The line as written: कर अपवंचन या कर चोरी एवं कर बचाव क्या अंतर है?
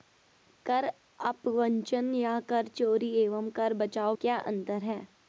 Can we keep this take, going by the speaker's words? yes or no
yes